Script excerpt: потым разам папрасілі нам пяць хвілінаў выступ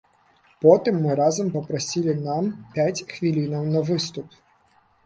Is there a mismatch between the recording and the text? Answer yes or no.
yes